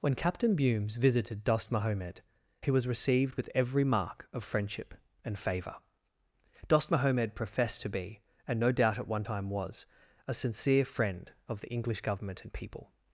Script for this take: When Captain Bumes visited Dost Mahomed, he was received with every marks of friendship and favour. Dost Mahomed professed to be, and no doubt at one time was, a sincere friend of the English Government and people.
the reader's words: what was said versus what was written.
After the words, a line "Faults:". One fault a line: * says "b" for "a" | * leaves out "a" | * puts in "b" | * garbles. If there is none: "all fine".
When Captain Bumes visited Dost Mahomed, he was received with every mark of friendship and favour. Dost Mahomed professed to be, and no doubt at one time was, a sincere friend of the English Government and people.
Faults:
* says "mark" for "marks"